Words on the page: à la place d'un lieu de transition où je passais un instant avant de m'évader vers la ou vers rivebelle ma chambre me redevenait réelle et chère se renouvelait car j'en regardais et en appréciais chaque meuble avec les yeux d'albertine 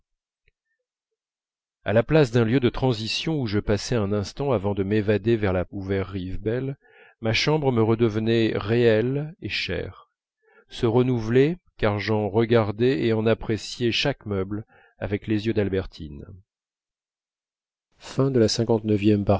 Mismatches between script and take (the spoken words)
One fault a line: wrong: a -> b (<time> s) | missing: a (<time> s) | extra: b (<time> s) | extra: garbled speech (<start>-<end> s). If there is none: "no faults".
no faults